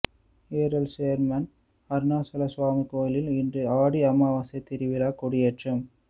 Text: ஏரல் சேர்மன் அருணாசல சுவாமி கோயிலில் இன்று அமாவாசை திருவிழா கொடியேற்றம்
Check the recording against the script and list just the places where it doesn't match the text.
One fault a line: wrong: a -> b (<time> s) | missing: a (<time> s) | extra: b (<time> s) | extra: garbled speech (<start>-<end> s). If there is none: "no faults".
extra: ஆடி (3.8 s)